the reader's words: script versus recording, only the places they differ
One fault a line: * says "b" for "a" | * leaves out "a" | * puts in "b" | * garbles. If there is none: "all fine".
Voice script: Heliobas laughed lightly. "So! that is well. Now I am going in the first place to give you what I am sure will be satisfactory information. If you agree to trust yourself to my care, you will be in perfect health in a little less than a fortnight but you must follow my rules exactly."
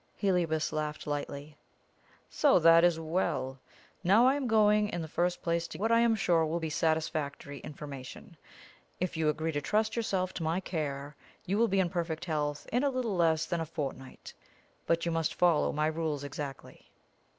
* leaves out "give you"